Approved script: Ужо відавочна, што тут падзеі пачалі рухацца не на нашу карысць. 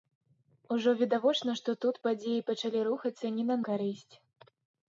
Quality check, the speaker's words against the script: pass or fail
fail